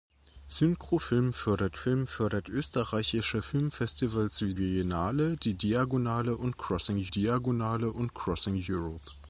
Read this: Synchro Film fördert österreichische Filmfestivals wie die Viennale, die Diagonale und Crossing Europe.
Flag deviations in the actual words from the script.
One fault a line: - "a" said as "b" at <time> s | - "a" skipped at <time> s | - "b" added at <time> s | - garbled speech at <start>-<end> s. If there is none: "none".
- "Film fördert" added at 1.7 s
- "Viennale" added at 4.6 s
- "Viennale die" said as "Diagonale und Crossing" at 5.5 s